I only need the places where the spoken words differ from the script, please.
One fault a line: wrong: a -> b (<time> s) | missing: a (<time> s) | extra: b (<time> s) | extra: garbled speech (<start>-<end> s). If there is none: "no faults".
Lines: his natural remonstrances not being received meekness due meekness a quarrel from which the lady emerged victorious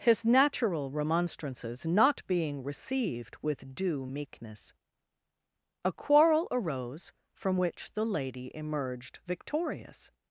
wrong: meekness -> with (3.4 s)
extra: arose (6.5 s)